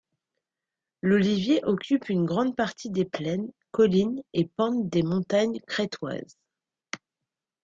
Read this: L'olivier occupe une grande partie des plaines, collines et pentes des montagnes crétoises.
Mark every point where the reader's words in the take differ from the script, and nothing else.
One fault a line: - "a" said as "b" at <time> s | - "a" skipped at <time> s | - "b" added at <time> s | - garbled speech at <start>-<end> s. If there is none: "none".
none